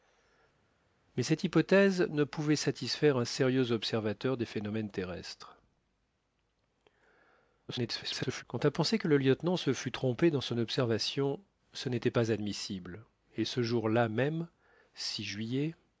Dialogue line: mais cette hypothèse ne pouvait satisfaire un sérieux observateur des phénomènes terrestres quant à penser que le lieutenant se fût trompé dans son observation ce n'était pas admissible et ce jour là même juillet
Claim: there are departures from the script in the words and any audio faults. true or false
true